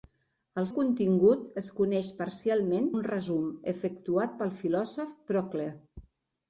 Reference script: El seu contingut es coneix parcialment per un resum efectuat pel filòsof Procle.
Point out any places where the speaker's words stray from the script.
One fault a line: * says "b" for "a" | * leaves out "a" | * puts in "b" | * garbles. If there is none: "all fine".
* leaves out "seu"
* leaves out "per"